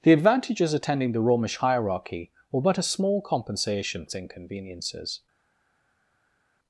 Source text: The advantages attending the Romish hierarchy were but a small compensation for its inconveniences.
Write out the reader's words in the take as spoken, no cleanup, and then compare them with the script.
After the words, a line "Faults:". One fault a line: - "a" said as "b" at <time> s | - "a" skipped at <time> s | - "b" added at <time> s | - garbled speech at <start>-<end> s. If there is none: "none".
The advantages attending the Romish hierarchy were but a small compensation its inconveniences.
Faults:
- "for" skipped at 4.1 s